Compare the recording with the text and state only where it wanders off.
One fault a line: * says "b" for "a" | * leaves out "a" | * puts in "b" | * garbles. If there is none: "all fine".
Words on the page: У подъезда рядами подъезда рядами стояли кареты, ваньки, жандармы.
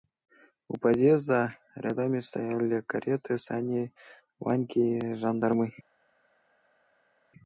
* leaves out "подъезда рядами"
* puts in "сани"